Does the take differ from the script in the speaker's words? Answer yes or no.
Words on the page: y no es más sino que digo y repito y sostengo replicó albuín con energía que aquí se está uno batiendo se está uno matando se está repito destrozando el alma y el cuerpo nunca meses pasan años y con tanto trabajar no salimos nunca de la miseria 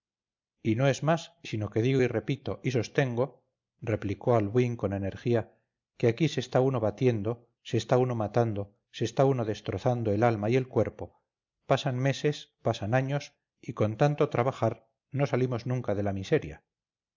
yes